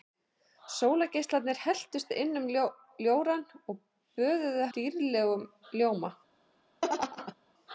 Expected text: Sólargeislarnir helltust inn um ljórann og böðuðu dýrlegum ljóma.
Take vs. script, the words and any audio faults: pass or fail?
fail